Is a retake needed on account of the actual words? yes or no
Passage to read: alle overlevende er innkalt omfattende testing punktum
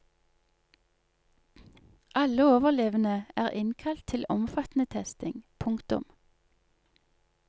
yes